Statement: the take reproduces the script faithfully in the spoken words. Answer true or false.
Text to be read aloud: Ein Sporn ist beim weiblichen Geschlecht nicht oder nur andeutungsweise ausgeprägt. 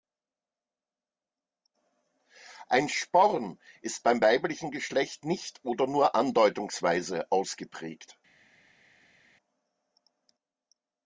true